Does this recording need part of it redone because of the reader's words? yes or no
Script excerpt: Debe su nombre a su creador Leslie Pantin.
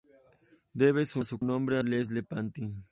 yes